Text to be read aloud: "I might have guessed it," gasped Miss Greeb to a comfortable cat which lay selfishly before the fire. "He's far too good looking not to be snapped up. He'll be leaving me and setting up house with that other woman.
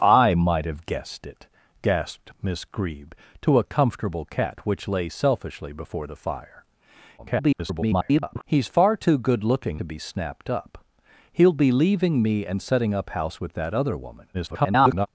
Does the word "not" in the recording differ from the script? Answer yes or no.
yes